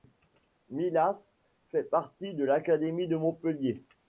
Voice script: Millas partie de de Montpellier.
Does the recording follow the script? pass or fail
fail